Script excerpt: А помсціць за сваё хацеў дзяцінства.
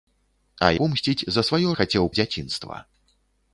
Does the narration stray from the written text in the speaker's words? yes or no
no